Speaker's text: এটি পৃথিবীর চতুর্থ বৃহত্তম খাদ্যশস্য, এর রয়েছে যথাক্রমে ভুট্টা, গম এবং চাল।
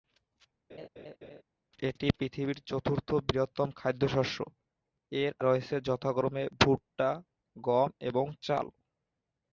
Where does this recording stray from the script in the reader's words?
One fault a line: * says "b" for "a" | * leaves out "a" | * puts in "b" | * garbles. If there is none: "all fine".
all fine